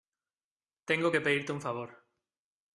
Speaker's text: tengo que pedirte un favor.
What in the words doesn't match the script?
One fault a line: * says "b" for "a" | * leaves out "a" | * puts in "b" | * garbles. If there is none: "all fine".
all fine